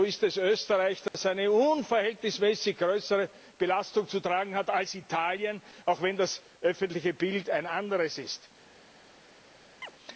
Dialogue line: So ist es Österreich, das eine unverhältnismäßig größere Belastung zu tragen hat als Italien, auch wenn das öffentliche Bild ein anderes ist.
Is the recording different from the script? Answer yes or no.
no